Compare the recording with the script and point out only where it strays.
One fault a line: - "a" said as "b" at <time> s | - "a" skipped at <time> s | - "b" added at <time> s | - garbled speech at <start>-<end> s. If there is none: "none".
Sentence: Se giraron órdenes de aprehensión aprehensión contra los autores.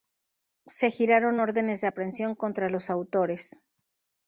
- "aprehensión" skipped at 2.4 s